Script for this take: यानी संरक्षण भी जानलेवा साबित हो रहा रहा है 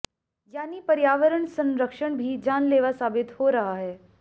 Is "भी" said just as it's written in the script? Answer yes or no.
yes